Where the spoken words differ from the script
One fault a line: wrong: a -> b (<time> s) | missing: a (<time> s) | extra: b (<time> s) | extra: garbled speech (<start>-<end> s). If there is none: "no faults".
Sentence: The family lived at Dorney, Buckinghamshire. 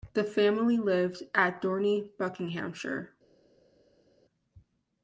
no faults